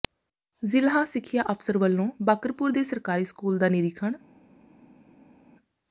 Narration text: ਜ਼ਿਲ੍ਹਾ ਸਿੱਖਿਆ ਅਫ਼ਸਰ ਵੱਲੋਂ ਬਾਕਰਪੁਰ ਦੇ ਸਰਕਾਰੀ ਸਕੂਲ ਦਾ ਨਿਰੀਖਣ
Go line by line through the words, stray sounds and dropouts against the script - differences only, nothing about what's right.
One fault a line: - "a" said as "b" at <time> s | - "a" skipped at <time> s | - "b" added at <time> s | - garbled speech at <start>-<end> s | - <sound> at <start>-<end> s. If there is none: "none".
none